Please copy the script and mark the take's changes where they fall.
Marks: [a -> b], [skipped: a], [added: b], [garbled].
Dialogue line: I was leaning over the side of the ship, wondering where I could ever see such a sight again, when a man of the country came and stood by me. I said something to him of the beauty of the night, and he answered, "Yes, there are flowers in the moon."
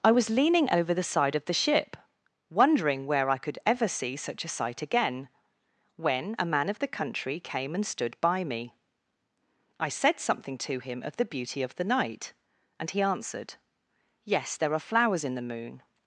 I was leaning over the side of the ship, wondering where I could ever see such a sight again, when a man of the country came and stood by me. I said something to him of the beauty of the night, and he answered, "Yes, there are flowers in the moon."